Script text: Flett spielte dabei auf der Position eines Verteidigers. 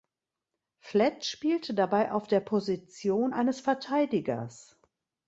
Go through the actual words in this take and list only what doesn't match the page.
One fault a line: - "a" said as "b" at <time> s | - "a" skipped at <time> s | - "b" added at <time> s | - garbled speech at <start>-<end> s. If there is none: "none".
none